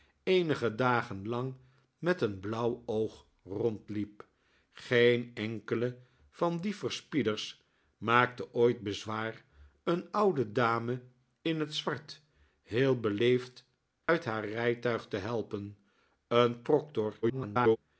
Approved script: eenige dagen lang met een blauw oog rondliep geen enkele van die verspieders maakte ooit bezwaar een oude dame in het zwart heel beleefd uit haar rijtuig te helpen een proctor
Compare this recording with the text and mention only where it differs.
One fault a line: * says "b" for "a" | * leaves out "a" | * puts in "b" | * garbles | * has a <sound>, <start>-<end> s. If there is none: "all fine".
* has a dropout, 14.0-14.1 s
* garbles